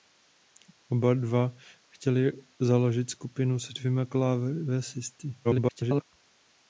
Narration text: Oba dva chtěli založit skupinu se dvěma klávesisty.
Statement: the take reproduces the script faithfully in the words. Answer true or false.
false